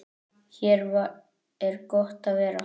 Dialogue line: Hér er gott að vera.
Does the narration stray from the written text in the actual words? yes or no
no